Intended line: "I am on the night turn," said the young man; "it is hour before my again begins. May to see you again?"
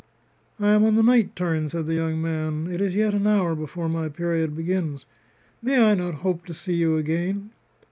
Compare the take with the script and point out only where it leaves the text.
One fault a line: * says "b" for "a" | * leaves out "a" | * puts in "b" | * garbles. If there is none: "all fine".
* puts in "yet an"
* says "period" for "again"
* puts in "I not hope"